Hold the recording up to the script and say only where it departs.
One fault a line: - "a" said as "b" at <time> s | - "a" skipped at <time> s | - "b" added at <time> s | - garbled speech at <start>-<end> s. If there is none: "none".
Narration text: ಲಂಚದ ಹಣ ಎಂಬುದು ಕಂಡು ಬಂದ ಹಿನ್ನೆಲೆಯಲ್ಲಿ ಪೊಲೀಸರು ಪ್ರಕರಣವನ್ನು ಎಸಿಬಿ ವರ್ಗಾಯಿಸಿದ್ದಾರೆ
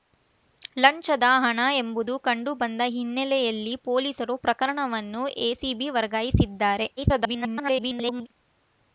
- garbled speech at 7.0-8.3 s